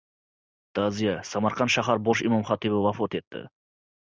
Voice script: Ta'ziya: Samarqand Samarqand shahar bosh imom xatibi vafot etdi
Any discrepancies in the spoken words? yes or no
yes